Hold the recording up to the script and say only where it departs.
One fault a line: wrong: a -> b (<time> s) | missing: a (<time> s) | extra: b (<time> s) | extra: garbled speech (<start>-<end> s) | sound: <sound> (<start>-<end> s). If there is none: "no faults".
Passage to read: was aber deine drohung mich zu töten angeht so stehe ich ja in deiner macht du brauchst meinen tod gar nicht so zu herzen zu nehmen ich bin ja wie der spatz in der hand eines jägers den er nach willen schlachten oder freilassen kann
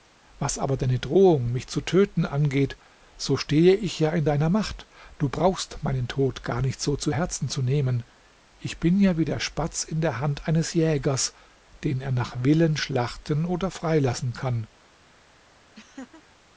sound: laugh (15.7-16.2 s)